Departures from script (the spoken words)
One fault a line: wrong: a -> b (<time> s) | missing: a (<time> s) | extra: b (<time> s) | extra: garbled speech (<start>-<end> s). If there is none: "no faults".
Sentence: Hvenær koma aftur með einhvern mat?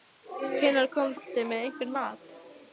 no faults